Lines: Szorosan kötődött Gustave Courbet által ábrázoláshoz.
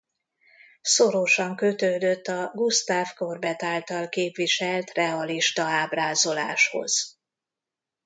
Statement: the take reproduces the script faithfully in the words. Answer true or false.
false